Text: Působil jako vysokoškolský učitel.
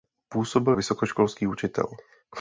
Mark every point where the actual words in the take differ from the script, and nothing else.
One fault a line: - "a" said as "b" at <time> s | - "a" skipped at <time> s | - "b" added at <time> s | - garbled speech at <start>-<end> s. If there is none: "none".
- "jako" skipped at 0.8 s